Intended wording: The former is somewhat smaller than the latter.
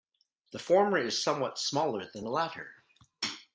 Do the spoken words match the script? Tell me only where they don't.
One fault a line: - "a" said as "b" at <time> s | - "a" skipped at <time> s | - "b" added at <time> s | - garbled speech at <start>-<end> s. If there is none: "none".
none